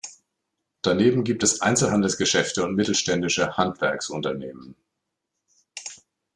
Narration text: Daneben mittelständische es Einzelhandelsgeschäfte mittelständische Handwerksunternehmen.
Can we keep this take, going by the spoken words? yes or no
no